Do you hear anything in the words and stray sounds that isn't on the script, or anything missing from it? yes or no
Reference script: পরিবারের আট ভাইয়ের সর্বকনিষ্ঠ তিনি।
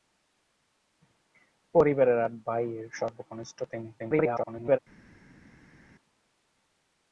yes